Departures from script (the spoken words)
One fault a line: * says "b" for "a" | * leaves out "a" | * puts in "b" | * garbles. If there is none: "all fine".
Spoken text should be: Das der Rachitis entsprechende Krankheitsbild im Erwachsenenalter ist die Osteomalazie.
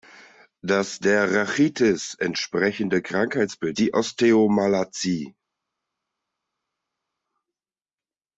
* leaves out "im Erwachsenenalter ist"